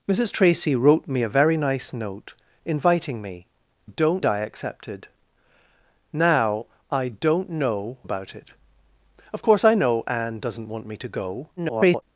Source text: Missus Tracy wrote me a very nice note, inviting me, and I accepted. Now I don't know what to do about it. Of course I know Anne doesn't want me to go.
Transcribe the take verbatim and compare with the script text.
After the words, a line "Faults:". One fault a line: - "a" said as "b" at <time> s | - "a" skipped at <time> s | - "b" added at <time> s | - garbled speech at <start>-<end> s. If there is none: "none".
Missus Tracy wrote me a very nice note, inviting me, don't I accepted. Now I don't know about it. Of course I know Anne doesn't want me to go. [garbled]
Faults:
- "and" said as "don't" at 3.8 s
- "what to do" skipped at 8.0 s
- garbled speech at 11.6-12.0 s